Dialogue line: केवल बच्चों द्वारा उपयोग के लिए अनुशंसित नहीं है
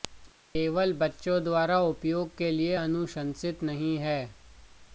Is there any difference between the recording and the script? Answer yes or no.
no